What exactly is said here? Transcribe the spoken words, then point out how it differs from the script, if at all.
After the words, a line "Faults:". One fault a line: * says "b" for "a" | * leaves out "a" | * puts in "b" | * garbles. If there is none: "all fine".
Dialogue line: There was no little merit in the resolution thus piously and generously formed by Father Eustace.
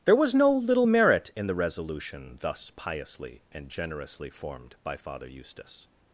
There was no little merit in the resolution thus piously and generously formed by Father Eustace.
Faults:
all fine